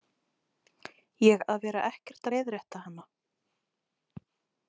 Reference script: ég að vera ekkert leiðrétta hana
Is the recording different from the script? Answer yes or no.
no